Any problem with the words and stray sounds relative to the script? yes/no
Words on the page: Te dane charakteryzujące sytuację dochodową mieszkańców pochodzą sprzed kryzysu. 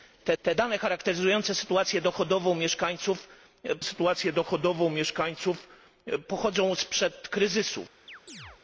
yes